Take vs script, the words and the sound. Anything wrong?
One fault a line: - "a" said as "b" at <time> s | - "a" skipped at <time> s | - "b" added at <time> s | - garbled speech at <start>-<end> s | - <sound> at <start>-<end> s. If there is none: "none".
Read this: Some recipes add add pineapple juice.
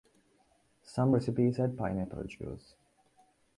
- "add" skipped at 1.8 s